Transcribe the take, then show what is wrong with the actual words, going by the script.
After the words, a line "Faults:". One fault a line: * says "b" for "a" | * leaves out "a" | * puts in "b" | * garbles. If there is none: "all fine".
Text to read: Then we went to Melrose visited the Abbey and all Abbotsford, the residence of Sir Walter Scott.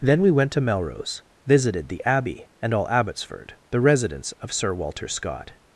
Then we went to Melrose visited the Abbey and all Abbotsford, the residence of Sir Walter Scott.
Faults:
all fine